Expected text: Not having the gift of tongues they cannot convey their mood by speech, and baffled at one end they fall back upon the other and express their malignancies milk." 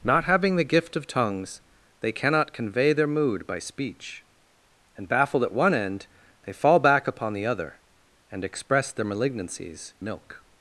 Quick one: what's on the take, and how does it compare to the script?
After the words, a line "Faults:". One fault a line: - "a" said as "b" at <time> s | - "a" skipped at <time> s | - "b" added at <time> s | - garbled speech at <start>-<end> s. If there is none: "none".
Not having the gift of tongues they cannot convey their mood by speech, and baffled at one end they fall back upon the other and express their malignancies milk."
Faults:
none